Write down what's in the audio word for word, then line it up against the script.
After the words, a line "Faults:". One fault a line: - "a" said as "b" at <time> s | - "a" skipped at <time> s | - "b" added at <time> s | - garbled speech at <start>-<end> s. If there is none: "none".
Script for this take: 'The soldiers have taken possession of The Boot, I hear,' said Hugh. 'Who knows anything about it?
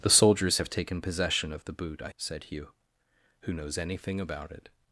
'The soldiers have taken possession of The Boot, I,' said Hugh. 'Who knows anything about it?
Faults:
- "hear" skipped at 2.1 s